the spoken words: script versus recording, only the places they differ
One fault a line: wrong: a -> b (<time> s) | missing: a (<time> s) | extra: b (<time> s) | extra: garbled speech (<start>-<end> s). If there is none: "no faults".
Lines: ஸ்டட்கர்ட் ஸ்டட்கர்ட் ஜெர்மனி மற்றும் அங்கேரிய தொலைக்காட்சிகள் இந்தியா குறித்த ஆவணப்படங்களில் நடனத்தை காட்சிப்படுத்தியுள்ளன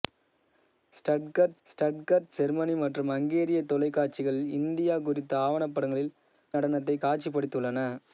no faults